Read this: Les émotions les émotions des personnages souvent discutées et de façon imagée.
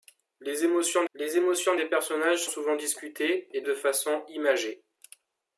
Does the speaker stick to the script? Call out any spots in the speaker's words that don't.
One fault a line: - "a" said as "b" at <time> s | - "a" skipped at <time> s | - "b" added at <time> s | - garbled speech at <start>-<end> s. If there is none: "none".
none